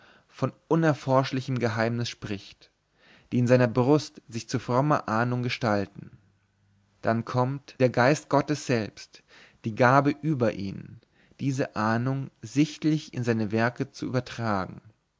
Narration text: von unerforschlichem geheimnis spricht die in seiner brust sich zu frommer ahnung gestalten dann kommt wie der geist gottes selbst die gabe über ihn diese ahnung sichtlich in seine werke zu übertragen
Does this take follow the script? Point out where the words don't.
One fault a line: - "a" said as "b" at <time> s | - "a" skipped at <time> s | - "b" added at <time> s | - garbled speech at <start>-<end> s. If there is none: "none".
- "wie" skipped at 7.8 s